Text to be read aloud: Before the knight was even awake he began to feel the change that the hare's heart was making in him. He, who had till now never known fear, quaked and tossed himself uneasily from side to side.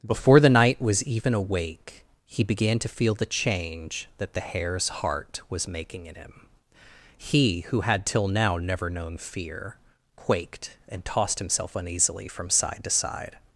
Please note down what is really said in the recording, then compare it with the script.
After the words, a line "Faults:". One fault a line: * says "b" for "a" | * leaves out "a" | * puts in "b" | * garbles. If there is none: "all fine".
Before the knight was even awake he began to feel the change that the hare's heart was making in him. He, who had till now never known fear, quaked and tossed himself uneasily from side to side.
Faults:
all fine